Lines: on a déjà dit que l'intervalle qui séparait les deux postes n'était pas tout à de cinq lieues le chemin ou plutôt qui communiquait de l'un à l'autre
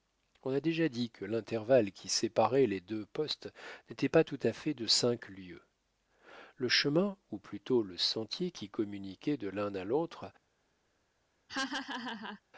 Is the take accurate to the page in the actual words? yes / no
no